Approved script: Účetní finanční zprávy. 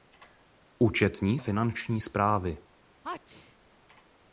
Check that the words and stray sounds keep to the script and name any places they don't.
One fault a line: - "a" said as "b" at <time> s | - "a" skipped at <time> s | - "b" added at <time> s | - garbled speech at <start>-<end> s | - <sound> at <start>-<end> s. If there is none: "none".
- sneeze at 3.0-3.6 s